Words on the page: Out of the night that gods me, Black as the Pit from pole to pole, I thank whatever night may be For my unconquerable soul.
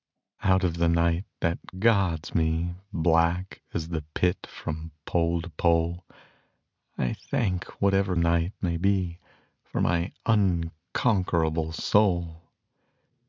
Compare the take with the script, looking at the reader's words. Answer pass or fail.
pass